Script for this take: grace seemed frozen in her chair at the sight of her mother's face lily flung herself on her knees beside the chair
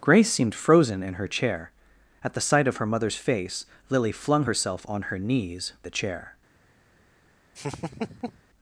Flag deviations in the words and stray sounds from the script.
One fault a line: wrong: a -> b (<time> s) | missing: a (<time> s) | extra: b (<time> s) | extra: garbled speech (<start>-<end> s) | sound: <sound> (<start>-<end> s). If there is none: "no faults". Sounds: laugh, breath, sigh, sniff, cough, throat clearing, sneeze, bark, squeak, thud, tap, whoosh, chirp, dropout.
missing: beside (5.7 s)
sound: laugh (7.5-8.4 s)